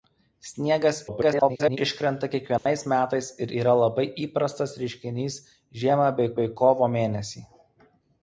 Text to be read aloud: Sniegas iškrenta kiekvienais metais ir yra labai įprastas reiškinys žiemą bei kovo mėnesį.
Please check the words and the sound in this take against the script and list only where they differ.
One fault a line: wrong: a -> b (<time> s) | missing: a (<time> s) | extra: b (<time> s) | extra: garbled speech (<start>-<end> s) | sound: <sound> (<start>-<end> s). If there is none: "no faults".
extra: garbled speech (1.1-1.8 s)
sound: dropout (2.6-2.7 s)
extra: bei (6.4 s)